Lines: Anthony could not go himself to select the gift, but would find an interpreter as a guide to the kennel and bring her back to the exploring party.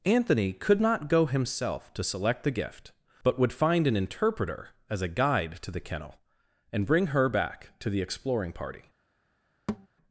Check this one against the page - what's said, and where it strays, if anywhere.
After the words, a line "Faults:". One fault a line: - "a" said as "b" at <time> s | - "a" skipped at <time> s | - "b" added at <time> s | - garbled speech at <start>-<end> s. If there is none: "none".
Anthony could not go himself to select the gift, but would find an interpreter as a guide to the kennel and bring her back to the exploring party.
Faults:
none